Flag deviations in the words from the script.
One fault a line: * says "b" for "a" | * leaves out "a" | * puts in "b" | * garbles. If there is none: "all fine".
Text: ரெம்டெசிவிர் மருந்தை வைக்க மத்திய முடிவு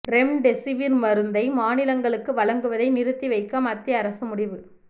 * puts in "மாநிலங்களுக்கு வழங்குவதை நிறுத்தி"
* puts in "அரசு"